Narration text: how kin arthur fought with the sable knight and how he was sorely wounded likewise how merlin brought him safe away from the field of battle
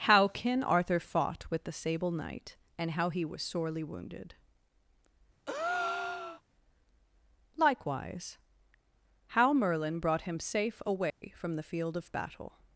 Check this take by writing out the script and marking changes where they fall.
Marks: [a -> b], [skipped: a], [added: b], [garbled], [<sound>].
how kin arthur fought with the sable knight and how he was sorely wounded [breath] likewise how merlin brought him safe away [dropout] from the field of battle